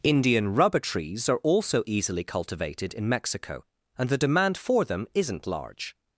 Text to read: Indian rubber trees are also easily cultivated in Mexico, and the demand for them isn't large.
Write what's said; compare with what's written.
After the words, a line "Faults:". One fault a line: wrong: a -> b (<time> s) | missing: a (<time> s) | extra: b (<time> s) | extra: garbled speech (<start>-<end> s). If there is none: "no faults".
Indian rubber trees are also easily cultivated in Mexico, and the demand for them isn't large.
Faults:
no faults